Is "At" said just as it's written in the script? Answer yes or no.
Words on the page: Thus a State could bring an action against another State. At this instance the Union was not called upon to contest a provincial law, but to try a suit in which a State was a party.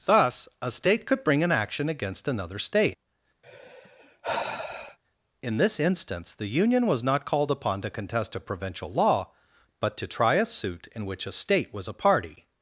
no